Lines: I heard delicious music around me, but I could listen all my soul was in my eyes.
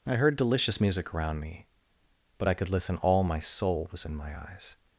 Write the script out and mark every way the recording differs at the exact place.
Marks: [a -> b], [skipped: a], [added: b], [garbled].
I heard delicious music around me, but I could listen all my soul was in my eyes.